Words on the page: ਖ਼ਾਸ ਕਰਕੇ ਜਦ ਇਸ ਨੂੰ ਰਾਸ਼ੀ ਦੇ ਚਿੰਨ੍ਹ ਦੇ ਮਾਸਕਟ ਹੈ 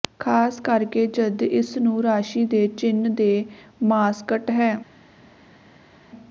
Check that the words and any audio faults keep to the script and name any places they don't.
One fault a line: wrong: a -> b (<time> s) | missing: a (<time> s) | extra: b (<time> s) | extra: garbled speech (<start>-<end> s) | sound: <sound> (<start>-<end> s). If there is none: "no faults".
no faults